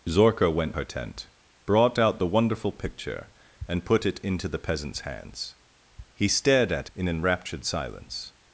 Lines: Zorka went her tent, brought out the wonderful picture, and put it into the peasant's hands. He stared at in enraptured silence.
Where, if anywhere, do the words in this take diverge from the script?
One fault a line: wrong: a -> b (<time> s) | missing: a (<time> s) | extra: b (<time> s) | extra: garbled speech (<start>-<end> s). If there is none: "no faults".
no faults